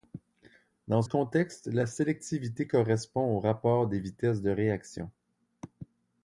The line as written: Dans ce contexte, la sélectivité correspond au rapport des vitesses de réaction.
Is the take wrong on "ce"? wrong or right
wrong